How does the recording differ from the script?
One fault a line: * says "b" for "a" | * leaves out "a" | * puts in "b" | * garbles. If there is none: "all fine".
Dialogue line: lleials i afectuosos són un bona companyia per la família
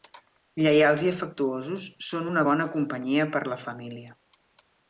* says "una" for "un"